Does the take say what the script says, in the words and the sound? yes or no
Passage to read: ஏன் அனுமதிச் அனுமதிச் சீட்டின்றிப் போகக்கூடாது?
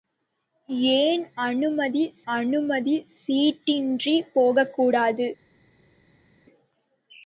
yes